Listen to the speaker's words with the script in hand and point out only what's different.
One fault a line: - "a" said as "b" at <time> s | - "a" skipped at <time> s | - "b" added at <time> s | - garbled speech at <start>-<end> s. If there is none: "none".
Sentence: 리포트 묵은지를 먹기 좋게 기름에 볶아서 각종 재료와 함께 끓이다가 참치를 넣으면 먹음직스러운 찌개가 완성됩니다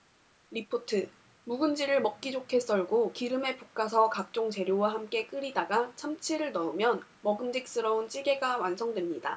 - "썰고" added at 2.6 s